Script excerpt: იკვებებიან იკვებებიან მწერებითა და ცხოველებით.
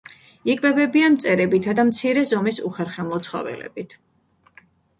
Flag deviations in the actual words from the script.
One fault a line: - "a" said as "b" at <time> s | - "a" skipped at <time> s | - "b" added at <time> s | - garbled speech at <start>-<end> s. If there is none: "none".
- "იკვებებიან" skipped at 1.2 s
- "მცირე ზომის უხერხემლო" added at 1.9 s